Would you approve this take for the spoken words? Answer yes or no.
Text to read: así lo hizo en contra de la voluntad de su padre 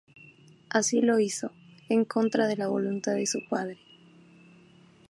yes